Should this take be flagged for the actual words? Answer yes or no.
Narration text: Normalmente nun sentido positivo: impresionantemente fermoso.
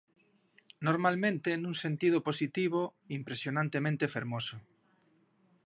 no